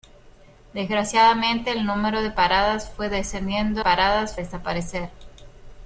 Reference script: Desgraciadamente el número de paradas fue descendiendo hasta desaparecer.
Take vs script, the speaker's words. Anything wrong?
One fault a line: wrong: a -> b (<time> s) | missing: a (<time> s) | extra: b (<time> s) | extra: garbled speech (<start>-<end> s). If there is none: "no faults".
wrong: hasta -> paradas (3.8 s)